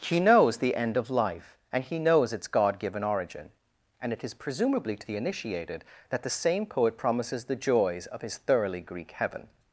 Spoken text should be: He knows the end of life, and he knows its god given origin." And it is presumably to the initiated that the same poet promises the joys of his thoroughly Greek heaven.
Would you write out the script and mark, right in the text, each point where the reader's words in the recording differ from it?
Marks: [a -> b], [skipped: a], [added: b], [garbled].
He knows the end of life, and he knows its god given origin." And it is presumably to the initiated that the same poet promises the joys of his thoroughly Greek heaven.